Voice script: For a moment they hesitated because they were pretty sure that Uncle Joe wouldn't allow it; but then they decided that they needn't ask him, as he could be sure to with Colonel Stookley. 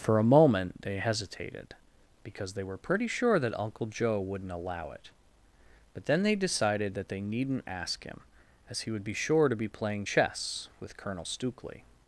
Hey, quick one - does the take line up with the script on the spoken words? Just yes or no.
no